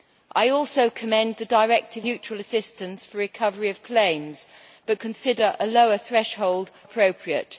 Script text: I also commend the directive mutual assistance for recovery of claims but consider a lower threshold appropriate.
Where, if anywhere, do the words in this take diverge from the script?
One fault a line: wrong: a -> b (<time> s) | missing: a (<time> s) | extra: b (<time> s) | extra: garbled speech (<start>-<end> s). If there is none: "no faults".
no faults